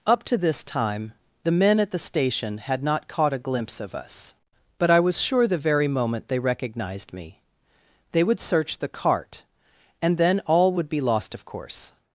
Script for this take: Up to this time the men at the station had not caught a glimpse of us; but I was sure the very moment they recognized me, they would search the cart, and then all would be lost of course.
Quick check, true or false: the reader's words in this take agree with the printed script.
true